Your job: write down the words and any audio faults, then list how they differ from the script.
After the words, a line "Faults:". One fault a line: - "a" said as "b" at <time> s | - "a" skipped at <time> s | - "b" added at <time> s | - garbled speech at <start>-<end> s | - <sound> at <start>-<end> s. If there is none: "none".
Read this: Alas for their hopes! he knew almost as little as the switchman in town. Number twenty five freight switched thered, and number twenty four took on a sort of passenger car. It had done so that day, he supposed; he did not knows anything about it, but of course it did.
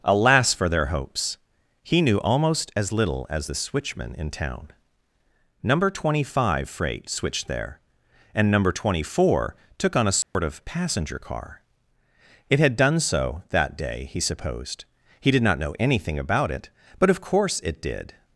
Alas for their hopes! he knew almost as little as the switchman in town. Number twenty five freight switched there, and number twenty four took on a sort of passenger car. It had done so that day, he supposed; he did not know anything about it, but of course it did.
Faults:
- "thered" said as "there" at 7.5 s
- dropout at 10.2-10.3 s
- "knows" said as "know" at 15.6 s